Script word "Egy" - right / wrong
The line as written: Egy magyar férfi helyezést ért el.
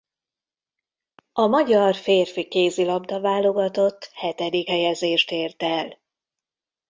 wrong